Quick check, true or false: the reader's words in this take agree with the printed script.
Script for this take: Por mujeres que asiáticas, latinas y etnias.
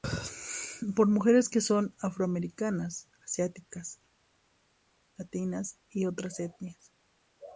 false